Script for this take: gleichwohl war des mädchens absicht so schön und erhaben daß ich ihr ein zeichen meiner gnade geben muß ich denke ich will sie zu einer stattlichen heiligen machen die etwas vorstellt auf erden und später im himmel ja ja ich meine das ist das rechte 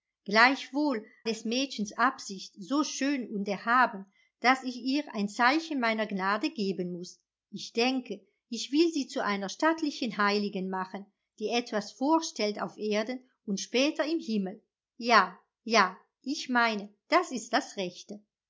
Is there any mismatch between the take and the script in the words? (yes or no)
yes